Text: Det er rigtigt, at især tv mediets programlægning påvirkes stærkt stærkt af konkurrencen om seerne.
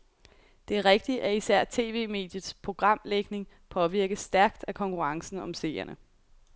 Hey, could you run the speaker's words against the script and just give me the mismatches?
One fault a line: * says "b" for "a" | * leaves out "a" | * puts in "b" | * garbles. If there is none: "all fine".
* leaves out "stærkt"